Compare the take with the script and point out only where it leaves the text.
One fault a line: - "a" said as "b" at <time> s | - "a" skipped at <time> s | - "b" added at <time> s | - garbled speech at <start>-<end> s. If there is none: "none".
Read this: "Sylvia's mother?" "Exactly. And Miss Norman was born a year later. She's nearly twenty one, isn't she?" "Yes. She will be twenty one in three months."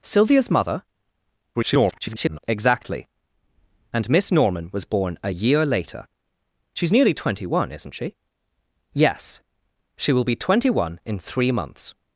- garbled speech at 1.5-2.4 s